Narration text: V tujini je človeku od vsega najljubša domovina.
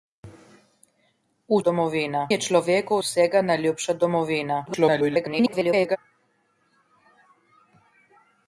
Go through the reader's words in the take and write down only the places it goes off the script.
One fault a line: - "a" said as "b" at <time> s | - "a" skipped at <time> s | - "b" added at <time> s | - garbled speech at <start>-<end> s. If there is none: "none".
- "tujini" said as "domovina" at 1.6 s
- "od" skipped at 3.0 s
- garbled speech at 4.7-6.0 s